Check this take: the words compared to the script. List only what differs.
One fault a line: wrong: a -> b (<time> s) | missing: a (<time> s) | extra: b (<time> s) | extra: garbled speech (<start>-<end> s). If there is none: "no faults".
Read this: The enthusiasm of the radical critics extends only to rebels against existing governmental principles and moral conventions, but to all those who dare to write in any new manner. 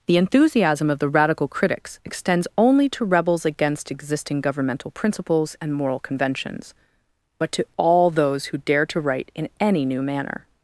no faults